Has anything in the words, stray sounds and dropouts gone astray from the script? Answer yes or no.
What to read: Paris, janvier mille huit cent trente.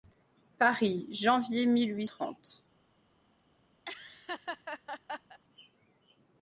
yes